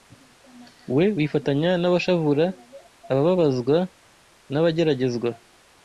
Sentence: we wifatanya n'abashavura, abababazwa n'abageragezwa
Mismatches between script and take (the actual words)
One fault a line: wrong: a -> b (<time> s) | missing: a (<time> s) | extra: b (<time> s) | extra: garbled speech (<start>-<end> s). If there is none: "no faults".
no faults